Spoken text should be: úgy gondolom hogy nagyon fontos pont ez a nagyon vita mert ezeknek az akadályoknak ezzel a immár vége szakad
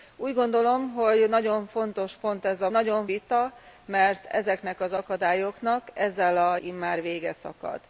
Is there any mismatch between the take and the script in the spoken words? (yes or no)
no